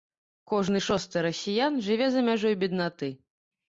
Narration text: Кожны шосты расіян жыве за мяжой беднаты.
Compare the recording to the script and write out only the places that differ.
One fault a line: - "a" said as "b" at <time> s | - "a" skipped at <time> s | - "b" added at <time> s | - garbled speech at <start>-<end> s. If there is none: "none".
none